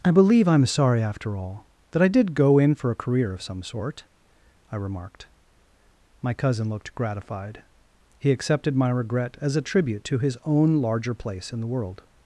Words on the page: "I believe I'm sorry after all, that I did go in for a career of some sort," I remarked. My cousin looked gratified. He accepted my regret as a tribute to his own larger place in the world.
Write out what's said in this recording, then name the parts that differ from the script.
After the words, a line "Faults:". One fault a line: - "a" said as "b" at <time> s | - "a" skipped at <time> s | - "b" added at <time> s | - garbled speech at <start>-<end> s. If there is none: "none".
"I believe I'm sorry after all, that I did go in for a career of some sort," I remarked. My cousin looked gratified. He accepted my regret as a tribute to his own larger place in the world.
Faults:
none